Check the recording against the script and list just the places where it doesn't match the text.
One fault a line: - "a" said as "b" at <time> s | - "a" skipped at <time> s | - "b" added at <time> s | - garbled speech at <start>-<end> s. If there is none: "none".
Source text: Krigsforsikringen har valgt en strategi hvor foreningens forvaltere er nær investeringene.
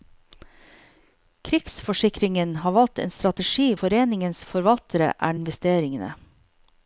- "hvor" skipped at 3.7 s
- "nær" skipped at 5.4 s